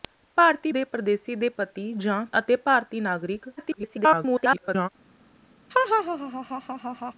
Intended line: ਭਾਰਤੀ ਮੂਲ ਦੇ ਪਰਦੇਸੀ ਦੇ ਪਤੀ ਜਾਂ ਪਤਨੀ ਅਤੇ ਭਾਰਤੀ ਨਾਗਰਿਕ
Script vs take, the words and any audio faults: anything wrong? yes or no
yes